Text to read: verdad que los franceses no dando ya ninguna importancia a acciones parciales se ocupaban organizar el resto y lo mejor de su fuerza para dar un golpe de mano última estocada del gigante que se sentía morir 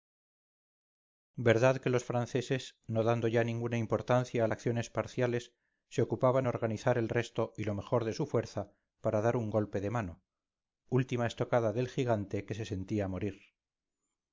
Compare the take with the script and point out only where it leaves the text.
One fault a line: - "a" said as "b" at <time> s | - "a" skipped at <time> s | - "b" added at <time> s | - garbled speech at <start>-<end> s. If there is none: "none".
none